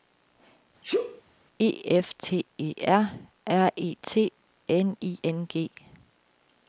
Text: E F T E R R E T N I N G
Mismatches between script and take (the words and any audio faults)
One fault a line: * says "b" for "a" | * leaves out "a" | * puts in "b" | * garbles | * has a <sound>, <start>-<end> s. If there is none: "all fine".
* has a sneeze, 0.8-1.2 s